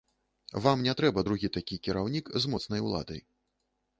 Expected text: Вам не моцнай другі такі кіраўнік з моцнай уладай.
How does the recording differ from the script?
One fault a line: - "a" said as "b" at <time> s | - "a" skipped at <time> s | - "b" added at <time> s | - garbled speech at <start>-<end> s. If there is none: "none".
- "моцнай" said as "трэба" at 1.0 s